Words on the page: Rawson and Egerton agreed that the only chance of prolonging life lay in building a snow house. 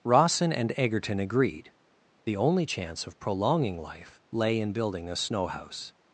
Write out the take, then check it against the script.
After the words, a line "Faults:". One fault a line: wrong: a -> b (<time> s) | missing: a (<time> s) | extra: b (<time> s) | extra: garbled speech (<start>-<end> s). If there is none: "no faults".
Rawson and Egerton agreed the only chance of prolonging life lay in building a snow house.
Faults:
missing: that (1.7 s)